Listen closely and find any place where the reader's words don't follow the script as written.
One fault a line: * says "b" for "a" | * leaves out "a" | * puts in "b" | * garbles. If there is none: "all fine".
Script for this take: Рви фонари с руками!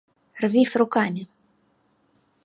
* leaves out "фонари"